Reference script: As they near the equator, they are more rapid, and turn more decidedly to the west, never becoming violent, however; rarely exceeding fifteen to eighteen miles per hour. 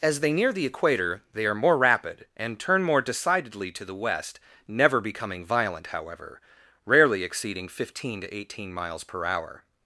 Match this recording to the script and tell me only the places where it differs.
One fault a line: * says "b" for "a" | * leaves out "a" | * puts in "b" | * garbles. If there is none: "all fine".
all fine